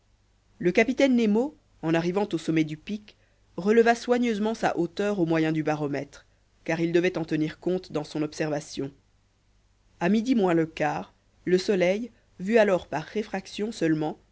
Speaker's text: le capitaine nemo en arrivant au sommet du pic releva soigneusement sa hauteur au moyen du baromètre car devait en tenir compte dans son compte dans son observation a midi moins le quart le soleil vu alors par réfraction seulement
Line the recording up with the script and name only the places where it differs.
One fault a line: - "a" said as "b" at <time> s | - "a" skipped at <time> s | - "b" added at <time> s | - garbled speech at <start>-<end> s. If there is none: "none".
- "il" added at 6.8 s
- "compte dans son" skipped at 8.2 s